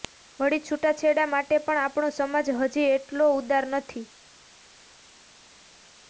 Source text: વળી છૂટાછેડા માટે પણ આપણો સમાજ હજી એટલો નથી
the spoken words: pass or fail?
fail